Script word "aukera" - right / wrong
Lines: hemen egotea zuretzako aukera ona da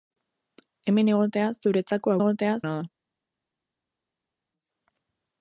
wrong